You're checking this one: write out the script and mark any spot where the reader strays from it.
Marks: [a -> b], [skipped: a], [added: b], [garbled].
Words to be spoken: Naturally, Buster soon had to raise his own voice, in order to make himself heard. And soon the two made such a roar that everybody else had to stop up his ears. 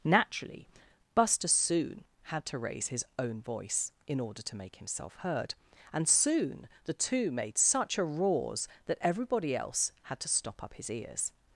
Naturally, Buster soon had to raise his own voice, in order to make himself heard. And soon the two made such a [roar -> roars] that everybody else had to stop up his ears.